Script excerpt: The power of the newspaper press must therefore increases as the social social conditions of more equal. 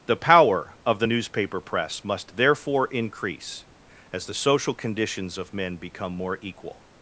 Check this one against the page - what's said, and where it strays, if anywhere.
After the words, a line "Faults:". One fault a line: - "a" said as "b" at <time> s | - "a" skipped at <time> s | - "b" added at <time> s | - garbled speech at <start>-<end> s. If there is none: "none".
The power of the newspaper press must therefore increase as the social conditions of men become more equal.
Faults:
- "increases" said as "increase" at 2.9 s
- "social" skipped at 4.7 s
- "men become" added at 5.5 s